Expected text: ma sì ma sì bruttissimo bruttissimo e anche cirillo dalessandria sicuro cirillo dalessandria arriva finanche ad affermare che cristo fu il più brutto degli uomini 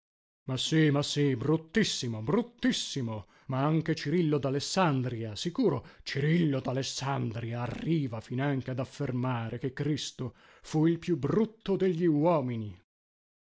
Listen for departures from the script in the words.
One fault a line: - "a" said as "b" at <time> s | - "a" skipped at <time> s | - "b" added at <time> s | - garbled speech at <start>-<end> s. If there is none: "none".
- "e" said as "ma" at 3.5 s